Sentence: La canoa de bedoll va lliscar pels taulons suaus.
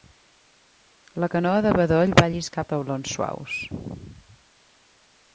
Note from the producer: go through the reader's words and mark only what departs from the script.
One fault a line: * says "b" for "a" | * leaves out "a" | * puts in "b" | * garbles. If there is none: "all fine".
* leaves out "pels"